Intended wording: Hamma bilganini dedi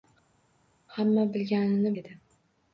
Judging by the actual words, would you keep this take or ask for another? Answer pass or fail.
pass